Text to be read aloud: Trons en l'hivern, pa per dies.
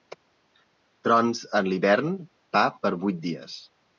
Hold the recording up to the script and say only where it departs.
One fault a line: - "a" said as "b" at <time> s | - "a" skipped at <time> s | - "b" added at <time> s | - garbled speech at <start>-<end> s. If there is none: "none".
- "vuit" added at 3.0 s